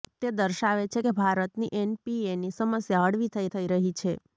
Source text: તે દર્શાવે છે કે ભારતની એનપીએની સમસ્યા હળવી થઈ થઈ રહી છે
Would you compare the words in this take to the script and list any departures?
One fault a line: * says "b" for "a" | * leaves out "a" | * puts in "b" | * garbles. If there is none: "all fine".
all fine